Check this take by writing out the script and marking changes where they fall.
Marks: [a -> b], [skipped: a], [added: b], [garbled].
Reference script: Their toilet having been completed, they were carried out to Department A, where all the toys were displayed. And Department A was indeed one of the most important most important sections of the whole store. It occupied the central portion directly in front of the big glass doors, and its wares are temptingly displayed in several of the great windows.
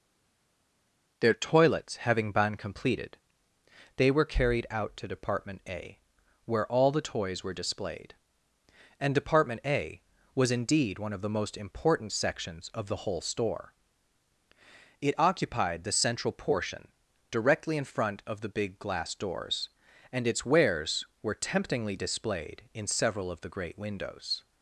Their [toilet -> toilets] having been completed, they were carried out to Department A, where all the toys were displayed. And Department A was indeed one of the most important [skipped: most important] sections of the whole store. It occupied the central portion directly in front of the big glass doors, and its wares [are -> were] temptingly displayed in several of the great windows.